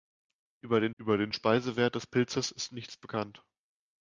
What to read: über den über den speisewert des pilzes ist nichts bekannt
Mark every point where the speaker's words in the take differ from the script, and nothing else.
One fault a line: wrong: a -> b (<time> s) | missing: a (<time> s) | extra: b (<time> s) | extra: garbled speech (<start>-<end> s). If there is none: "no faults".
no faults